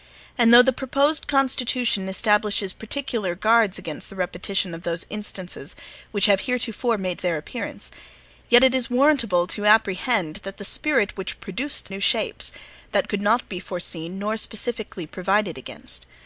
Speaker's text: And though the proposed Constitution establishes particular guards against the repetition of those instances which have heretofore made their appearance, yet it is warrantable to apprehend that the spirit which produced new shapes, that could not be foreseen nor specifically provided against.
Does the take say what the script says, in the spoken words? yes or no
yes